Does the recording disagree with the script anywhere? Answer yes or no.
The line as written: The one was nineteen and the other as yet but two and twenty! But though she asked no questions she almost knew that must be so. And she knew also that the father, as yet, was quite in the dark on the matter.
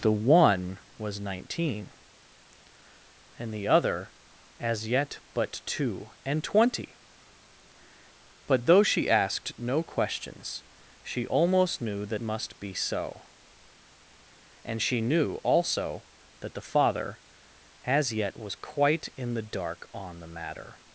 no